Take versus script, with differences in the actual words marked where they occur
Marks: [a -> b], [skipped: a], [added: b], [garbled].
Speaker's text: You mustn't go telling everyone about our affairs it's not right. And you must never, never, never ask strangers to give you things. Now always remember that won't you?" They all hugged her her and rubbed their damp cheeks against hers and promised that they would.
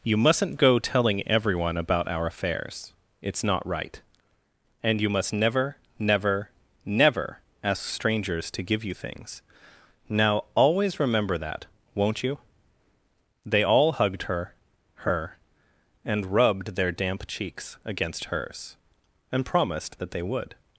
You mustn't go telling everyone about our affairs it's not right. And you must never, never, never ask strangers to give you things. Now always remember that won't you?" They all hugged her her and rubbed their damp cheeks against hers and promised that they would.